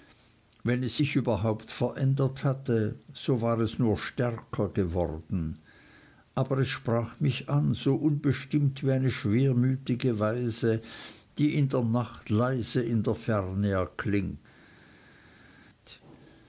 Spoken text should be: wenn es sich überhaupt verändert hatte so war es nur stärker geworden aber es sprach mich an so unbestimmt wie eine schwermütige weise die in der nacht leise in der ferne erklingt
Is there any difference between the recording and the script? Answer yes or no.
no